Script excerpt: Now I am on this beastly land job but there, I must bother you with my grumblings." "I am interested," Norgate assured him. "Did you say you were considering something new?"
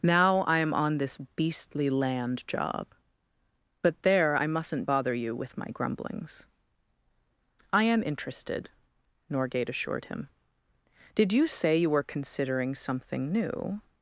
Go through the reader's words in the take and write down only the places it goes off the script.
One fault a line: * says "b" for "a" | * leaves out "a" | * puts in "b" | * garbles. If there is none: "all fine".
* says "mustn't" for "must"